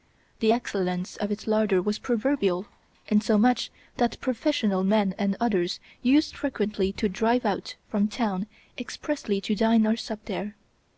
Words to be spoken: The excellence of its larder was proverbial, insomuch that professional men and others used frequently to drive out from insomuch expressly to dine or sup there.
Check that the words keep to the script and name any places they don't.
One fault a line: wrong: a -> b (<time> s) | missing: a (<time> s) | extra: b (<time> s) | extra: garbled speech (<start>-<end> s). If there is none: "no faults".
wrong: insomuch -> town (8.1 s)